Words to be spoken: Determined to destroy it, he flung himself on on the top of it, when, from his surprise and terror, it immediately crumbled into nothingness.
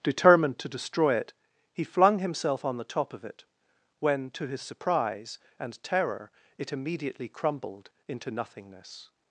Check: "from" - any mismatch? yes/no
yes